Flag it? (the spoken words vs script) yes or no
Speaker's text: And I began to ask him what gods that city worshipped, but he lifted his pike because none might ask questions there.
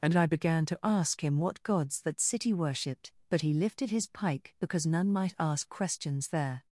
no